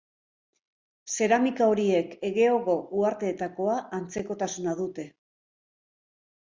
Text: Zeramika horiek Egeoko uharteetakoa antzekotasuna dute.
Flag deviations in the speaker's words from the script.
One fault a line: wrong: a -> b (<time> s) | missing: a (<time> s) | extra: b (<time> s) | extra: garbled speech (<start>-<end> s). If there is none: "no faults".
no faults